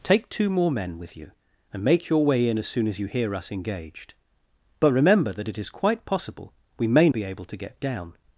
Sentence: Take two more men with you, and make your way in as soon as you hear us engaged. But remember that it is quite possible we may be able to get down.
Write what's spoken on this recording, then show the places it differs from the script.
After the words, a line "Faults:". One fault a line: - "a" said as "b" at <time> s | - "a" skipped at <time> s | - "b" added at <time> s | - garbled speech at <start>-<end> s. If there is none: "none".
Take two more men with you, and make your way in as soon as you hear us engaged. But remember that it is quite possible we may be able to get down.
Faults:
none